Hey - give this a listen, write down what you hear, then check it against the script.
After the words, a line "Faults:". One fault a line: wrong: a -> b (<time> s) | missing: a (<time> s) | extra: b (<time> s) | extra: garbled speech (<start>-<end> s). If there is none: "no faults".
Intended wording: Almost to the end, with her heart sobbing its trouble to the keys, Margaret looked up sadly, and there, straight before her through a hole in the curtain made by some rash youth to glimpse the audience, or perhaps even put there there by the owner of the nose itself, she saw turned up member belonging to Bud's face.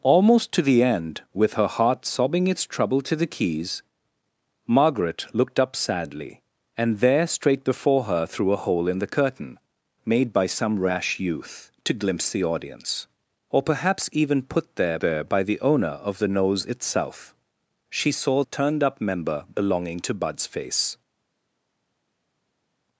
Almost to the end, with her heart sobbing its trouble to the keys, Margaret looked up sadly, and there, straight before her through a hole in the curtain made by some rash youth to glimpse the audience, or perhaps even put there there by the owner of the nose itself, she saw turned up member belonging to Bud's face.
Faults:
no faults